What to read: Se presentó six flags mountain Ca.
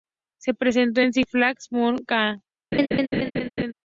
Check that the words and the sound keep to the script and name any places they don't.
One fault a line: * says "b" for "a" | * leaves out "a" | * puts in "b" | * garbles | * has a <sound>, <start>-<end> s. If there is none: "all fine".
* puts in "en"
* has a laugh, 2.7-3.7 s